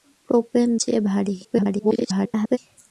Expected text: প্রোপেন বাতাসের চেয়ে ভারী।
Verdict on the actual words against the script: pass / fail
fail